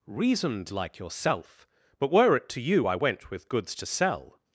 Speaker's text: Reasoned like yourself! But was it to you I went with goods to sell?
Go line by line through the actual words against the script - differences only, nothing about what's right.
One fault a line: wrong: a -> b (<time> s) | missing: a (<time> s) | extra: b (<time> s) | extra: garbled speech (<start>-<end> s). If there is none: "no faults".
wrong: was -> were (2.1 s)